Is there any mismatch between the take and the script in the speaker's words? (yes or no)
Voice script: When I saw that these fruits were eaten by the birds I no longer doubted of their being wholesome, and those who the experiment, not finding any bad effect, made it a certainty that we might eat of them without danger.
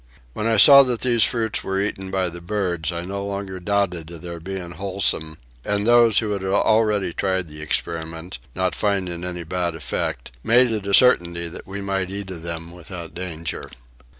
yes